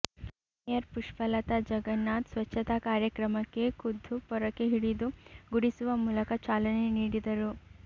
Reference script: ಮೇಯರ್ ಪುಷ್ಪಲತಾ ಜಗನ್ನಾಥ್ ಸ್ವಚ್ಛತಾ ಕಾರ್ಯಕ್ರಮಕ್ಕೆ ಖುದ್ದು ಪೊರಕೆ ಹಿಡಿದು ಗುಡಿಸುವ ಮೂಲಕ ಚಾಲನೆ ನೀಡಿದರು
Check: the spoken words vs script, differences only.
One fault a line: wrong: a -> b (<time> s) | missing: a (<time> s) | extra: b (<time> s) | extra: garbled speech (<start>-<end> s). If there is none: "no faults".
no faults